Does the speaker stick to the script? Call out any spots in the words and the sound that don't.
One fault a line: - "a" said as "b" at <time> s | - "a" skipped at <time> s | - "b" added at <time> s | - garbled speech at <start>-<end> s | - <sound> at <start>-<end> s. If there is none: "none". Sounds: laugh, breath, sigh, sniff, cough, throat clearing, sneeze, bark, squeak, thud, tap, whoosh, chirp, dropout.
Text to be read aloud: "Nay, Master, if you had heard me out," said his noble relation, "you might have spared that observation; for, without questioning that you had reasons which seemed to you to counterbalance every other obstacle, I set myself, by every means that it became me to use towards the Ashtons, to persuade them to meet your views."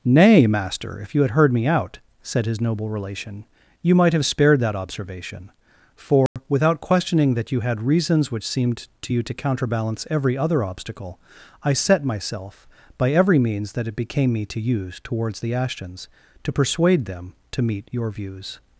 - dropout at 6.3-6.4 s